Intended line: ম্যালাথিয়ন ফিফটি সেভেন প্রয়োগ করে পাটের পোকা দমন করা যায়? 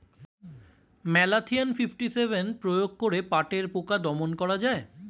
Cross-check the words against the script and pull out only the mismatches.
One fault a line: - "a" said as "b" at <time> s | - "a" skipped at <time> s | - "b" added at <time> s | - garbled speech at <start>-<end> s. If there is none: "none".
none